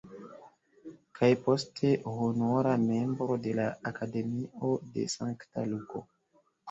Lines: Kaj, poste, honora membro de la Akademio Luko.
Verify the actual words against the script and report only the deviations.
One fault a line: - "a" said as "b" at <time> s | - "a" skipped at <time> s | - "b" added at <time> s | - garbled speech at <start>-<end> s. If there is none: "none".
- "de Sankta" added at 5.0 s